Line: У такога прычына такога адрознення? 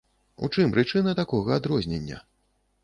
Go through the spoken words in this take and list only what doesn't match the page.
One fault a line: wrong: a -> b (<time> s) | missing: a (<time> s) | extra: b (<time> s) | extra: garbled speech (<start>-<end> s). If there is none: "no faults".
wrong: такога -> чым (0.6 s)